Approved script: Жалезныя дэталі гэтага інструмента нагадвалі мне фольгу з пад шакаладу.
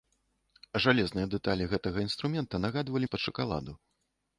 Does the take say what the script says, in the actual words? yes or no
no